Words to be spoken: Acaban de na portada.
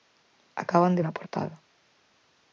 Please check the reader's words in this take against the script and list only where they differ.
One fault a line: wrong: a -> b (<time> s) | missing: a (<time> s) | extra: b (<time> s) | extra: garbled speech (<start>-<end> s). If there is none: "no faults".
no faults